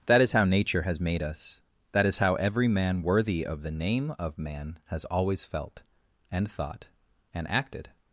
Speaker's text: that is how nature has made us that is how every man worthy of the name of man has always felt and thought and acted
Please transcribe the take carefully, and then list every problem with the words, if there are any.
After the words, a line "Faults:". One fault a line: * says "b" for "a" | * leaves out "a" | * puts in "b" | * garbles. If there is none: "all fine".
that is how nature has made us that is how every man worthy of the name of man has always felt and thought and acted
Faults:
all fine